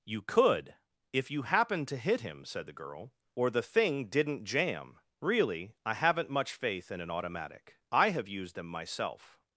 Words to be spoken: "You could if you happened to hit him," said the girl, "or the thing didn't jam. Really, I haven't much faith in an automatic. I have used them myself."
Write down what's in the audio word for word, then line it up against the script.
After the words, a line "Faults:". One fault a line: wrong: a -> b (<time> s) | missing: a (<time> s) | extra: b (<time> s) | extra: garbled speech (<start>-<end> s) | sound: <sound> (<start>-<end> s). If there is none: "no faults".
"You could if you happened to hit him," said the girl, "or the thing didn't jam. Really, I haven't much faith in an automatic. I have used them myself."
Faults:
no faults